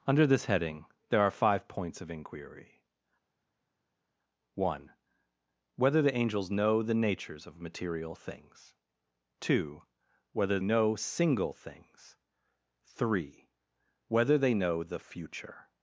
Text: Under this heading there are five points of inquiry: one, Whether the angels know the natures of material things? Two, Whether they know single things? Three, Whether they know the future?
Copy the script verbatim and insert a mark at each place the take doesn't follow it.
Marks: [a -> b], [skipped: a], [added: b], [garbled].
Under this heading there are five points of inquiry: one, Whether the angels know the natures of material things? Two, Whether [skipped: they] know single things? Three, Whether they know the future?